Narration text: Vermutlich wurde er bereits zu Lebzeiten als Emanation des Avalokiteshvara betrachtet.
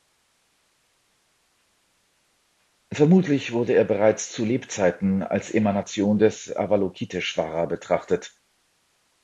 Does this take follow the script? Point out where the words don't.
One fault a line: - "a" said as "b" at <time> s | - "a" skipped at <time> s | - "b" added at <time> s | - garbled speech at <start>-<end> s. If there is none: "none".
none